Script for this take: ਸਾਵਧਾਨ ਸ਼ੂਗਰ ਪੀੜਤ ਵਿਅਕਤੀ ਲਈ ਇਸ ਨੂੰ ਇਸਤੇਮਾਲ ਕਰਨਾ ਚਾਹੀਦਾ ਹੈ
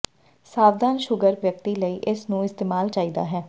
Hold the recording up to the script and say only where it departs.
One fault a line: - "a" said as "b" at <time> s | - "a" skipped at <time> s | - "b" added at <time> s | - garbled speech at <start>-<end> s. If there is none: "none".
- "ਪੀੜਤ" skipped at 1.4 s
- "ਕਰਨਾ" skipped at 2.9 s